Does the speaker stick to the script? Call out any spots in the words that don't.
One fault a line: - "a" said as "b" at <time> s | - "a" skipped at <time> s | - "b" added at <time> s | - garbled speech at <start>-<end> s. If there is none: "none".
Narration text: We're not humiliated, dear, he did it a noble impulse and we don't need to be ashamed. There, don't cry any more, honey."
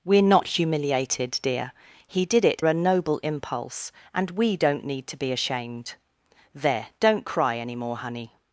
none